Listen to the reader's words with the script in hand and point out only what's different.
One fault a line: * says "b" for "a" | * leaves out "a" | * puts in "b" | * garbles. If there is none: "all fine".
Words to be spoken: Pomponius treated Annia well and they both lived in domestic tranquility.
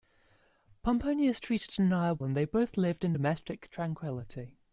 * leaves out "well"